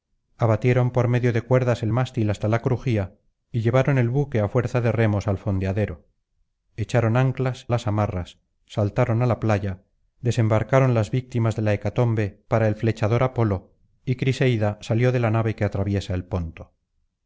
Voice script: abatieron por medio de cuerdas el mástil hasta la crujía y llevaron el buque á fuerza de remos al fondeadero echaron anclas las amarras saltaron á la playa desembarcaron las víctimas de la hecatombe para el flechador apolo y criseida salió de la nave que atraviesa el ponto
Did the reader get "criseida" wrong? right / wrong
right